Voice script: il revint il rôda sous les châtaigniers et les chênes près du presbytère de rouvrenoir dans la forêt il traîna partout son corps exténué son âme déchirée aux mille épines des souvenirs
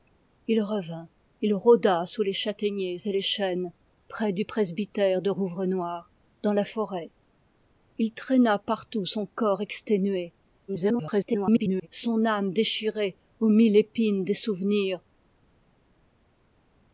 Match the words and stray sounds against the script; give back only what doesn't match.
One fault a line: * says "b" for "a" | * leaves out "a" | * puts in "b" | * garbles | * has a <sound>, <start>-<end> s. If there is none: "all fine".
* garbles